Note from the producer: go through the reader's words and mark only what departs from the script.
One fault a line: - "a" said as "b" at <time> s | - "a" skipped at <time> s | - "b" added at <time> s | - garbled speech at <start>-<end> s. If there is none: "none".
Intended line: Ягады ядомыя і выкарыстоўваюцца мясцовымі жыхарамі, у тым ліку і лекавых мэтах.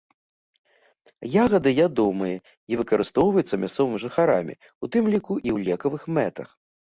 - "ў" added at 5.5 s